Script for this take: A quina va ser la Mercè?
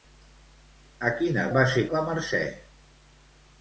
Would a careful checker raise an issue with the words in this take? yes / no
no